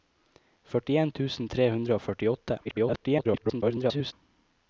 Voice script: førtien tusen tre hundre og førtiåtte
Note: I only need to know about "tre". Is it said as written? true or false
true